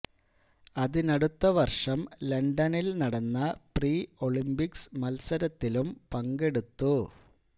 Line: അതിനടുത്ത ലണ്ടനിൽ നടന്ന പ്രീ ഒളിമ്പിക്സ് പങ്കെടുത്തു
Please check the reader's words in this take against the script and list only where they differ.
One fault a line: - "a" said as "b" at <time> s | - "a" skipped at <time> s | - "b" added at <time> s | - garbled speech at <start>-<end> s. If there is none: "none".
- "വർഷം" added at 1.6 s
- "മത്സരത്തിലും" added at 5.0 s